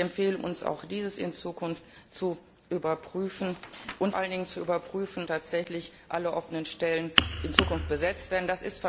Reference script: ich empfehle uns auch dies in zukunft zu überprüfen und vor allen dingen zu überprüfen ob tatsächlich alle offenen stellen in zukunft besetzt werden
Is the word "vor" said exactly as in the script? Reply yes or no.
no